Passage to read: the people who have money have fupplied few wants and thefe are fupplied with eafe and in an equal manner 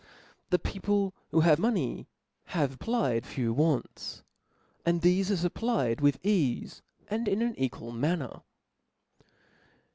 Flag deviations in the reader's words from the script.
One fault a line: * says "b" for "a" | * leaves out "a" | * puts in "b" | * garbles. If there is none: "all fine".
all fine